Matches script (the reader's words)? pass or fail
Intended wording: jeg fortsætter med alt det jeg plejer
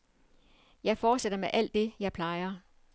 pass